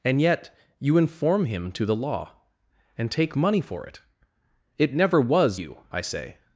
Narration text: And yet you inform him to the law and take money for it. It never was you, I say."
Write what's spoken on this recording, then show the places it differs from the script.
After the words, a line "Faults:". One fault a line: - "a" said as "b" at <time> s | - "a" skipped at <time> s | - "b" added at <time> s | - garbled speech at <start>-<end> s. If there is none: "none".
And yet you inform him to the law and take money for it. It never was you, I say."
Faults:
none